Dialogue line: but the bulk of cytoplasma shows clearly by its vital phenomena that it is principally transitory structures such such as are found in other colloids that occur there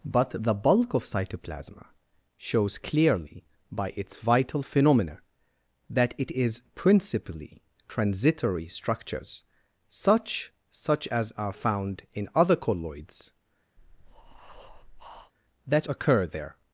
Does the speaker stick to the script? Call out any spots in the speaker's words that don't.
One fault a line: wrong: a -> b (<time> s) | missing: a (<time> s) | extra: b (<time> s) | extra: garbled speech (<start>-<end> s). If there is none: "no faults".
no faults